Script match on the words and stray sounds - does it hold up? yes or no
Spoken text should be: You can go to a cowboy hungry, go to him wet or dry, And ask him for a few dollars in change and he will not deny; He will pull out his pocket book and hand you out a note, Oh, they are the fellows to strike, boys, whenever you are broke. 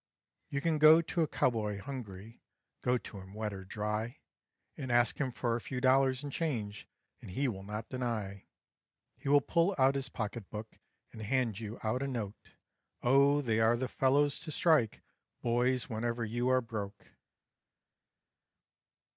yes